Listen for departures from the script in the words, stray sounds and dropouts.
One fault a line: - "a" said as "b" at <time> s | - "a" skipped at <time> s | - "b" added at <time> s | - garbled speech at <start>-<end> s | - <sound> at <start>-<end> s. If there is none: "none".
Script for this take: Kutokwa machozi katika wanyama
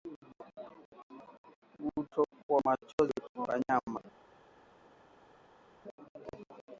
- "katika" said as "kwa" at 3.3 s